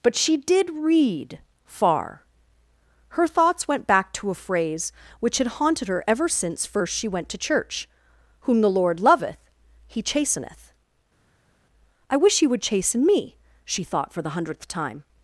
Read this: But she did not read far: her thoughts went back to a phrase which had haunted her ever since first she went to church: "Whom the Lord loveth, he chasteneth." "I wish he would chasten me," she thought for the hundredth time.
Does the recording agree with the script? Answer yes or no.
no